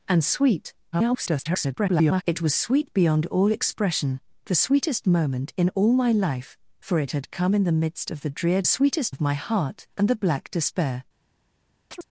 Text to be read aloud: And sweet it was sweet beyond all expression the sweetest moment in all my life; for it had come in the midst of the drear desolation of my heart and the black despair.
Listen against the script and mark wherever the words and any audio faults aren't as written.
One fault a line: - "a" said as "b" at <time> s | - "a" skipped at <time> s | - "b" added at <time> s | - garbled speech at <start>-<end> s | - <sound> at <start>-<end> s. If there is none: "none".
- garbled speech at 0.9-2.2 s
- "desolation" said as "sweetest" at 8.6 s
- chirp at 11.9-12.0 s